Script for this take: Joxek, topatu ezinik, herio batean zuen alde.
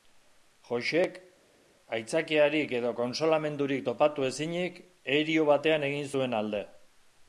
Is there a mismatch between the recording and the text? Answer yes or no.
yes